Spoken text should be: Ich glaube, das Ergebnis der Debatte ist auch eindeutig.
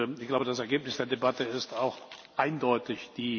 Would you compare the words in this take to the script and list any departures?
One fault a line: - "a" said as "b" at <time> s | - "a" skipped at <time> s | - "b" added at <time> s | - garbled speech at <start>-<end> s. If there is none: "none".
none